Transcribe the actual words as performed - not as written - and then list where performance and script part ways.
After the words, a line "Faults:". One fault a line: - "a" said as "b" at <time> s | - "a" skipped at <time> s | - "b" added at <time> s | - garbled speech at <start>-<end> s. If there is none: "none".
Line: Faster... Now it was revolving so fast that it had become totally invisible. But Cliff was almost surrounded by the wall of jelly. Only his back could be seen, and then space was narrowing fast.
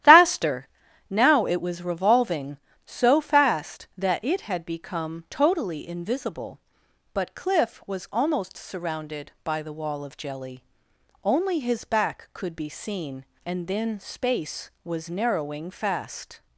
Faster... Now it was revolving so fast that it had become totally invisible. But Cliff was almost surrounded by the wall of jelly. Only his back could be seen, and then space was narrowing fast.
Faults:
none